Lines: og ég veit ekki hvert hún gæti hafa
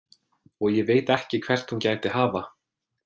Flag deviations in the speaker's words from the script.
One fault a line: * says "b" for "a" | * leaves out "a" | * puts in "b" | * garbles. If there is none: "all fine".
all fine